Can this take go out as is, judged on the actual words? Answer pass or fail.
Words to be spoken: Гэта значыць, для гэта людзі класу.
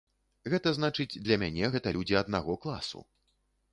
fail